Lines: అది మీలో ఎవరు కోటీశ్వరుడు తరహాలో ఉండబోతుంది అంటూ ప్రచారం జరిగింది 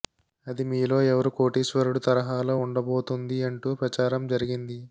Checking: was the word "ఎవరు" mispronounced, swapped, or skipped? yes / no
no